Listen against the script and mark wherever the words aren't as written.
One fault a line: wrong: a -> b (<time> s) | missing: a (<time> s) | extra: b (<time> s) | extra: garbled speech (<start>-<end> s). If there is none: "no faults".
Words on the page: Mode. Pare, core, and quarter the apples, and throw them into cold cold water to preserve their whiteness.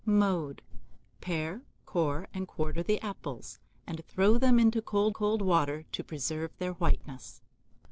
no faults